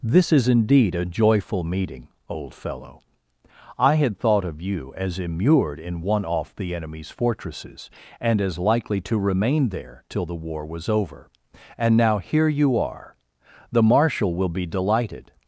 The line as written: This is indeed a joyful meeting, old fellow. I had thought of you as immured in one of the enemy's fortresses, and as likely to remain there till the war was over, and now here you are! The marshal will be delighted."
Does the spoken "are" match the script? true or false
true